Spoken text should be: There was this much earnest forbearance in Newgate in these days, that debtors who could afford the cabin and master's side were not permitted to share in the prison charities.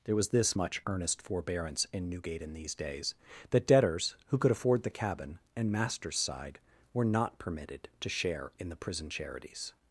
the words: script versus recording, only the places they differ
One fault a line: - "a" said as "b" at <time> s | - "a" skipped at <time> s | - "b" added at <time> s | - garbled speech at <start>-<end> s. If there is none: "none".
none